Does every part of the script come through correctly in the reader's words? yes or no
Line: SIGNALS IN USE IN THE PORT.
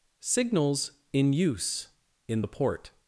yes